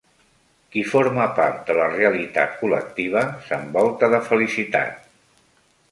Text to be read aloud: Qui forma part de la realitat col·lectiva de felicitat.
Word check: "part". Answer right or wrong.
right